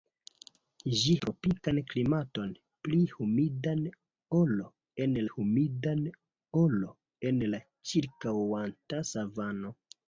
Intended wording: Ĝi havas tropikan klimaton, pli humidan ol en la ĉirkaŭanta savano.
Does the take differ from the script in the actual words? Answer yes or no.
yes